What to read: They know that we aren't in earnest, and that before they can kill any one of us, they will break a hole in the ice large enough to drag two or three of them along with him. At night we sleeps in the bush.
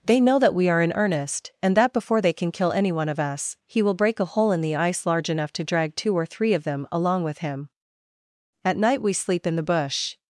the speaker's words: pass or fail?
fail